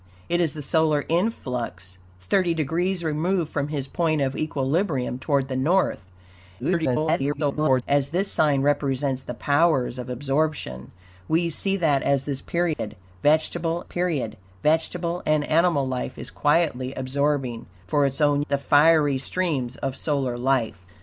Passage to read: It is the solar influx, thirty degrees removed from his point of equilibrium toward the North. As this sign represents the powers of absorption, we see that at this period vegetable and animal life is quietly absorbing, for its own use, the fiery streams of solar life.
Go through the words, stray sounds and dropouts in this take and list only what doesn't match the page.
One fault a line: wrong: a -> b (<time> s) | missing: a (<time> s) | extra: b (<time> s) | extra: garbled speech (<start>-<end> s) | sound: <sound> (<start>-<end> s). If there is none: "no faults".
extra: garbled speech (6.6-7.8 s)
sound: dropout (12.7-12.8 s)
extra: period vegetable (13.8 s)
missing: use (18.4 s)